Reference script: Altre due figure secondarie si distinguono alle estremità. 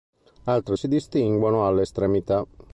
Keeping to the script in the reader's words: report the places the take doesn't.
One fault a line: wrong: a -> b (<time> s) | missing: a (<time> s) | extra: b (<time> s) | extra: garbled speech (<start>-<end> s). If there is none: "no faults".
missing: due figure secondarie (0.8 s)